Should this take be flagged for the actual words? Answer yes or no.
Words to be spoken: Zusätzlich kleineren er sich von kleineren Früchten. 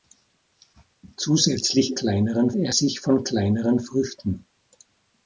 no